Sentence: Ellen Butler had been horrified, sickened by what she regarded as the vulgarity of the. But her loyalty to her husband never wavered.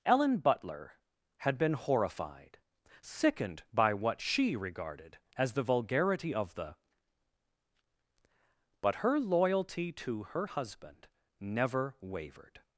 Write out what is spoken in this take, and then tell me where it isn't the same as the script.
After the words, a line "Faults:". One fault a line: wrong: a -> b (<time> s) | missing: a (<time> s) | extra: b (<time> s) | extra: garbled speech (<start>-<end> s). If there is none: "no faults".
Ellen Butler had been horrified, sickened by what she regarded as the vulgarity of the. But her loyalty to her husband never wavered.
Faults:
no faults